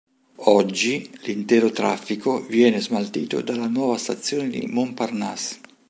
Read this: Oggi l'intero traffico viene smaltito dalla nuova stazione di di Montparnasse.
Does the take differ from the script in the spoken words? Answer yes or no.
no